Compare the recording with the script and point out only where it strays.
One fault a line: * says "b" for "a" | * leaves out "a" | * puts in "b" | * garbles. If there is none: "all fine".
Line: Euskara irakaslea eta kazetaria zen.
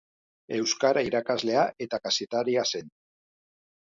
all fine